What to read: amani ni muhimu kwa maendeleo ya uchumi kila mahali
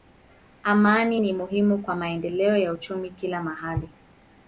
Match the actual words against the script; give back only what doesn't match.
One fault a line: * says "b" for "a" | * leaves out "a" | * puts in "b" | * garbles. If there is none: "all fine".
all fine